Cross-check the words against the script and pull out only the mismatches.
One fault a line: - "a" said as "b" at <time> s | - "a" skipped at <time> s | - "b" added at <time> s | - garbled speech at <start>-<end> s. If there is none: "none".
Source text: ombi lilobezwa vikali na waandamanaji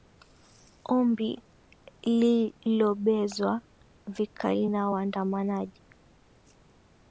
none